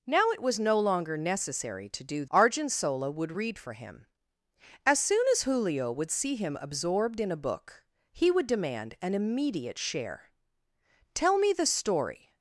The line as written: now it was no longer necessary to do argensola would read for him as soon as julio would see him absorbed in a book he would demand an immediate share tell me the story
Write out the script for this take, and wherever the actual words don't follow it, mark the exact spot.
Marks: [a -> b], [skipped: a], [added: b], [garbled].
now it was no longer necessary to do argensola would read for him as soon as julio would see him absorbed in a book he would demand an immediate share tell me the story